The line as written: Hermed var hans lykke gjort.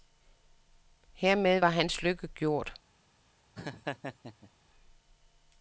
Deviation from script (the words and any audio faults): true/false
true